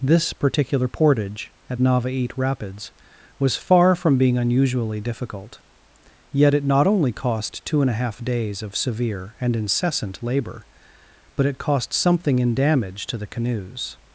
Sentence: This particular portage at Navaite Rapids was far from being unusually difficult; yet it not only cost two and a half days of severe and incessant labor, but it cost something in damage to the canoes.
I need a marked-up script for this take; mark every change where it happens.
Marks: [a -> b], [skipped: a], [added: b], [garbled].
This particular portage at Navaite Rapids was far from being unusually difficult; yet it not only cost two and a half days of severe and incessant labor, but it cost something in damage to the canoes.